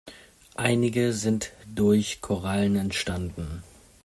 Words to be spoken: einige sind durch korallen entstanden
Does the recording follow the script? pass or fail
pass